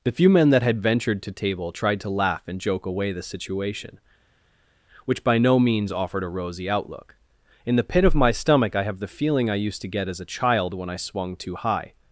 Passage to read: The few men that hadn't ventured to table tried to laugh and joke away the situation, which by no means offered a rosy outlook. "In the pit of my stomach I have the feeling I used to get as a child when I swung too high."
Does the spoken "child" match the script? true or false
true